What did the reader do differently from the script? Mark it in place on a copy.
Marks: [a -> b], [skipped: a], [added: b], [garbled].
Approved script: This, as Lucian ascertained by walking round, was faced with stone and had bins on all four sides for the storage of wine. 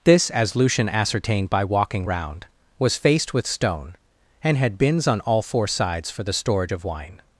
This, as Lucian ascertained by walking round, was faced with stone and had bins on all four sides for the storage of wine.